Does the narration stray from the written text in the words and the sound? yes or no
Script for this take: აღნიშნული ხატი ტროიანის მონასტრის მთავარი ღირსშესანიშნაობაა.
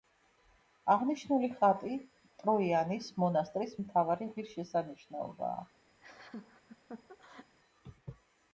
yes